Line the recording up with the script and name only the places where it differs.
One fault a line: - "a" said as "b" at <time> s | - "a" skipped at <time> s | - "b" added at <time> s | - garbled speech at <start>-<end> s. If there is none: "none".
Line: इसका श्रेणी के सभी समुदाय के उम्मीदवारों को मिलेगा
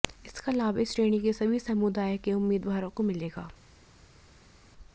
- "लाभ इस" added at 0.5 s